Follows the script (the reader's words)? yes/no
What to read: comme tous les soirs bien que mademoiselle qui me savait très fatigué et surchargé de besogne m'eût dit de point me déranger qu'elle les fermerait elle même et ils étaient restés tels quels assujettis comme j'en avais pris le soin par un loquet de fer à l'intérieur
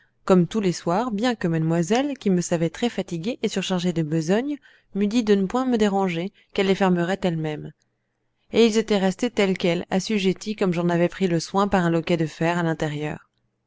no